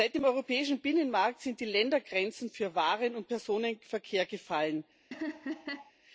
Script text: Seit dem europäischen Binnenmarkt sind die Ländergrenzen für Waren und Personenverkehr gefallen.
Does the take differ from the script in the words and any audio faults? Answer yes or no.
yes